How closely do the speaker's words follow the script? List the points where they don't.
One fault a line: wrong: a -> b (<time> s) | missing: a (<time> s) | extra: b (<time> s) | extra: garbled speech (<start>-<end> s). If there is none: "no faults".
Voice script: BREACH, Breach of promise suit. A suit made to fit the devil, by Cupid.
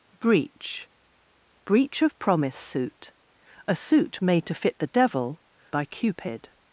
no faults